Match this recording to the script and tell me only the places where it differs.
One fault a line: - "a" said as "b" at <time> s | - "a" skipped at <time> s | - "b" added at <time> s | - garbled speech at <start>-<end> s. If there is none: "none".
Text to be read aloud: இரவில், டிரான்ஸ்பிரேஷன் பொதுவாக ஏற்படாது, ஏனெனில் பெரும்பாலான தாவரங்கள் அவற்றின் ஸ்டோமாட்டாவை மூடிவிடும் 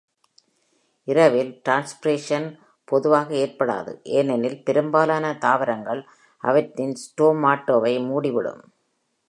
none